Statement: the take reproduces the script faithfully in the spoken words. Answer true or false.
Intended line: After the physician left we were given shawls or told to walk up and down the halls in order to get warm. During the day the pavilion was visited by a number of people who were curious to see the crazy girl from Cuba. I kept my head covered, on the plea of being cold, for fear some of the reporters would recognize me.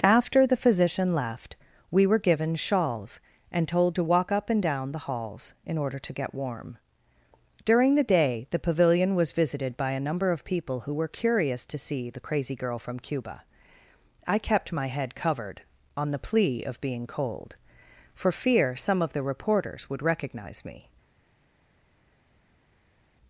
false